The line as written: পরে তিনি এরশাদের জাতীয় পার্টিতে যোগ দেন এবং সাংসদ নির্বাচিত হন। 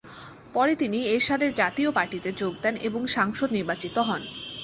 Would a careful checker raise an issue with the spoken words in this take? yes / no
no